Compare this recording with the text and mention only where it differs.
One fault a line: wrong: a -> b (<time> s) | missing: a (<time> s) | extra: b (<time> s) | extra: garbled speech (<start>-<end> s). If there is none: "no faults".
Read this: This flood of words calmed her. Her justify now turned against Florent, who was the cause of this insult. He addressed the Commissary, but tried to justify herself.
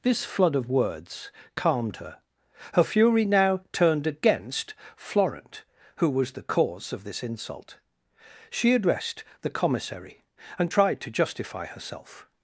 wrong: justify -> fury (2.8 s)
wrong: He -> She (8.5 s)
wrong: but -> and (10.6 s)